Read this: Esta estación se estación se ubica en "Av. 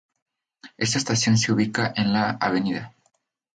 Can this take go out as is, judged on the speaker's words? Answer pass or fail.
fail